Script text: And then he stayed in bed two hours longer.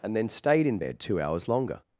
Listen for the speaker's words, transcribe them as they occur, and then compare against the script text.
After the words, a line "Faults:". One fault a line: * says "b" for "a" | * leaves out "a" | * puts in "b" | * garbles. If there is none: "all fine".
And then stayed in bed two hours longer.
Faults:
* leaves out "he"